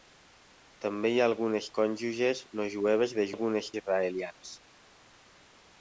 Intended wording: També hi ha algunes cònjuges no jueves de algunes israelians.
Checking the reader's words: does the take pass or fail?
pass